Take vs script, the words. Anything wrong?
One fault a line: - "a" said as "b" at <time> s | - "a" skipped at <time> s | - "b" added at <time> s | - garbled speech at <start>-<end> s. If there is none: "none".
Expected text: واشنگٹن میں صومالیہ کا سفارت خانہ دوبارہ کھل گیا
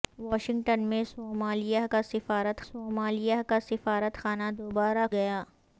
- "صومالیہ کا سفارت" added at 2.6 s
- "کھل" skipped at 5.1 s